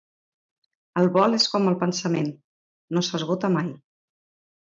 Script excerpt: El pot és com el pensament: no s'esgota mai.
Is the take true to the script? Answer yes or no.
no